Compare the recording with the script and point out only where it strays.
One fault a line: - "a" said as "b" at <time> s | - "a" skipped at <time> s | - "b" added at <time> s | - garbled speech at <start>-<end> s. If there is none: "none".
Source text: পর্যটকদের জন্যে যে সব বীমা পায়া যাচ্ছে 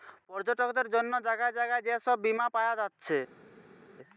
- "জাগায় জাগায়" added at 1.3 s